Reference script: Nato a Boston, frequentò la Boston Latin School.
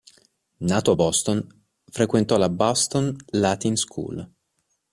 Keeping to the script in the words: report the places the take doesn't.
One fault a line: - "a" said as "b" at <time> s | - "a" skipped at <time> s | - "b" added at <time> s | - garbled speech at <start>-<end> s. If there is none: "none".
none